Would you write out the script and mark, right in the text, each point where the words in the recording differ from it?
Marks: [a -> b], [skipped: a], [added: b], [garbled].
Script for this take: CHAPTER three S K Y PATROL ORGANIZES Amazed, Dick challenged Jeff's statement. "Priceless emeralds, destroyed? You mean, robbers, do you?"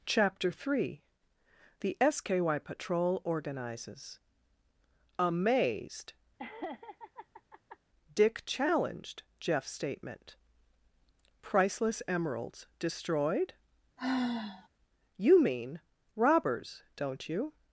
CHAPTER three [added: THE] S K Y PATROL ORGANIZES Amazed, Dick challenged Jeff's statement. "Priceless emeralds, destroyed? You mean, robbers, [do -> don't] you?"